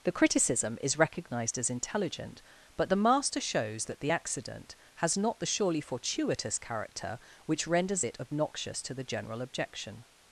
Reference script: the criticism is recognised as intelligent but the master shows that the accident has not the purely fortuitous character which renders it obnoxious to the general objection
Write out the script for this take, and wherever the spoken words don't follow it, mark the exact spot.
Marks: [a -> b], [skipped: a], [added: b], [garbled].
the criticism is recognised as intelligent but the master shows that the accident has not the [purely -> surely] fortuitous character which renders it obnoxious to the general objection